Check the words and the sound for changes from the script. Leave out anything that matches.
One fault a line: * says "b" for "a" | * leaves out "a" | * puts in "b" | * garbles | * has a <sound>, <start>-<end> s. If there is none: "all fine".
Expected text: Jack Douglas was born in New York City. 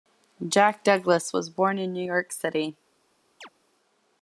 * has a chirp, 3.4-3.5 s